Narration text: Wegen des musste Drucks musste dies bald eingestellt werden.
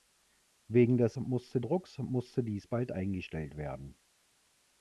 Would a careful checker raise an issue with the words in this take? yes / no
no